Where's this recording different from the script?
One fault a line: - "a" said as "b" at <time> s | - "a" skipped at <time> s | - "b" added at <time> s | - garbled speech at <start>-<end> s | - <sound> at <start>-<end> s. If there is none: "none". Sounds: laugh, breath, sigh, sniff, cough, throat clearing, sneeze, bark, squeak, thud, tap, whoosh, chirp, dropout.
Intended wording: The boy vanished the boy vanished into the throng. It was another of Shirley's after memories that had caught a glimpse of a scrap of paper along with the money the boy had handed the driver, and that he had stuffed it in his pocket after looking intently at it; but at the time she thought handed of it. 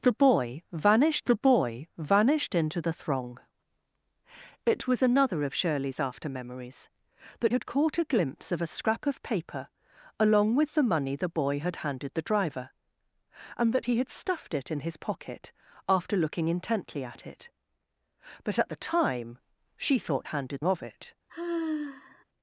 - sigh at 21.3-22.2 s